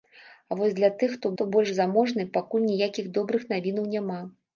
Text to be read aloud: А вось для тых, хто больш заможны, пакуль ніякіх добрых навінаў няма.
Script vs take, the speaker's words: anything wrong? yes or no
yes